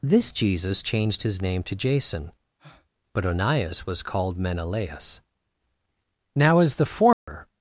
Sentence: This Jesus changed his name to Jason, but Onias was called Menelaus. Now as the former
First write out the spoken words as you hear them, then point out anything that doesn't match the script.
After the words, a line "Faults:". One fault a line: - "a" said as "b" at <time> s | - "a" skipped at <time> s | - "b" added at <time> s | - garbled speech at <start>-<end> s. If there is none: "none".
This Jesus changed his name to Jason, but Onias was called Menelaus. Now as the former
Faults:
none